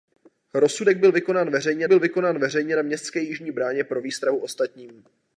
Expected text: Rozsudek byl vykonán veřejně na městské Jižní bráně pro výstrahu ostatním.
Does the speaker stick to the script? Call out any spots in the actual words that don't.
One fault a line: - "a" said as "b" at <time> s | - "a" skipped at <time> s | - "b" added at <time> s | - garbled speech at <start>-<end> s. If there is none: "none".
- "byl vykonán veřejně" added at 1.8 s